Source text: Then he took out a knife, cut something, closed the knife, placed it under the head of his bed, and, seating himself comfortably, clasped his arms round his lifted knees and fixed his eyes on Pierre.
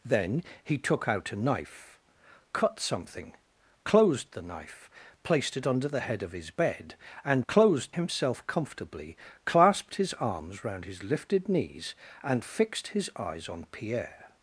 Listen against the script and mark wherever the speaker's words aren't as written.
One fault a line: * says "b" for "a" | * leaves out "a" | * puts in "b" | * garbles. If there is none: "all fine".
* says "closed" for "seating"